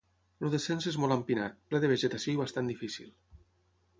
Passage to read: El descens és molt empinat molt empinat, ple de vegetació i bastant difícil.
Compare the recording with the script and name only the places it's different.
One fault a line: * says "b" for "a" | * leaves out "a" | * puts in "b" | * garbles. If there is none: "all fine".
* leaves out "molt empinat"